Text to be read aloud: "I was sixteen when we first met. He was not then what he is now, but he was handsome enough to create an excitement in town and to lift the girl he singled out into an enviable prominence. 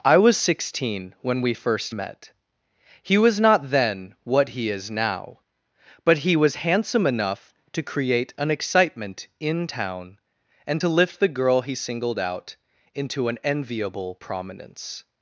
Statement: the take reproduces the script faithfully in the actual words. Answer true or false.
true